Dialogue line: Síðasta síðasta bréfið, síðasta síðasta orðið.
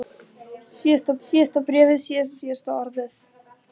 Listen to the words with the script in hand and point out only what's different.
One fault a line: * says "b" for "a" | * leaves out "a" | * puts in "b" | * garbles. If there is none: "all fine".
all fine